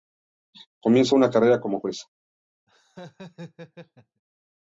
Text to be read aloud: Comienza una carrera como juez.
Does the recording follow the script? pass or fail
pass